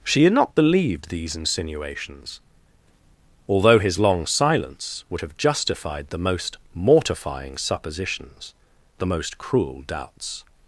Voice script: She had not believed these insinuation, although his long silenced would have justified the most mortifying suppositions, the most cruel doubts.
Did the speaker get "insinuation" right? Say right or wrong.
wrong